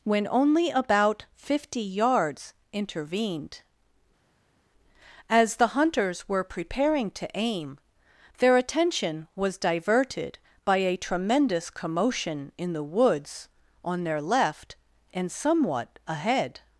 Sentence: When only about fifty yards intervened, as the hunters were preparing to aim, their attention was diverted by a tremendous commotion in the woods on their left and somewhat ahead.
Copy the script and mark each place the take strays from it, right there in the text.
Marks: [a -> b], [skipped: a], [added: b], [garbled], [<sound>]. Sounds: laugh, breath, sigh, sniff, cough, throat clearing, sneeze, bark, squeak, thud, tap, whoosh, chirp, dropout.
When only about fifty yards intervened, as the hunters were preparing to aim, their attention was diverted by a tremendous commotion in the woods on their left and somewhat ahead.